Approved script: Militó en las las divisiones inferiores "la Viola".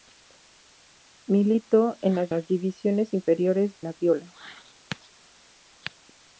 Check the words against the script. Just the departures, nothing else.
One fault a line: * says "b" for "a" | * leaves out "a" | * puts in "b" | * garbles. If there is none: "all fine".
all fine